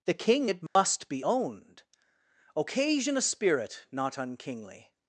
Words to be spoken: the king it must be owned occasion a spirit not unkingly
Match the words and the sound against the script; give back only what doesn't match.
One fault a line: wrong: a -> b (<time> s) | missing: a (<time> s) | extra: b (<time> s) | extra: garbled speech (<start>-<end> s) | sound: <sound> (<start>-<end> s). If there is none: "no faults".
sound: dropout (0.7-0.8 s)